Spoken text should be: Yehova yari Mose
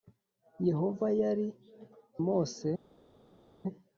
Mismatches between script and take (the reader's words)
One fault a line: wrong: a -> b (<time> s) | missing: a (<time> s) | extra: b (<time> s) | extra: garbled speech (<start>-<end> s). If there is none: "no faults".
no faults